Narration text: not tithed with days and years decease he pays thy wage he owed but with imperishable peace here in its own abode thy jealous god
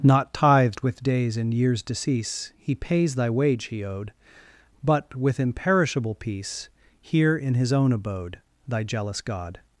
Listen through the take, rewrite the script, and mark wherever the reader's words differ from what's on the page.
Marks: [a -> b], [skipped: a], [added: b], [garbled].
not tithed with days and years decease he pays thy wage he owed but with imperishable peace here in [its -> his] own abode thy jealous god